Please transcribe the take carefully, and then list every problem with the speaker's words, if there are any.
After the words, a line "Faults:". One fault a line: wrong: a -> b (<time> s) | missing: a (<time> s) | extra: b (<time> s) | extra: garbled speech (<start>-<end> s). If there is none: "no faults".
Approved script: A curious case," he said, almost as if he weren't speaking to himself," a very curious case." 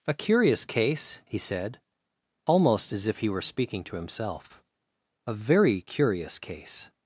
A curious case," he said, almost as if he were speaking to himself," a very curious case."
Faults:
wrong: weren't -> were (3.3 s)